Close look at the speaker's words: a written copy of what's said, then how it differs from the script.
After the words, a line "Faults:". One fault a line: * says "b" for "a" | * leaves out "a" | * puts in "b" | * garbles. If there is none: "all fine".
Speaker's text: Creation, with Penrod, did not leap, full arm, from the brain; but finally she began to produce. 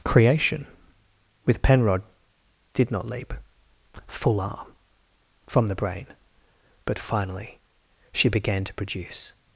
Creation, with Penrod, did not leap, full arm, from the brain; but finally she began to produce.
Faults:
all fine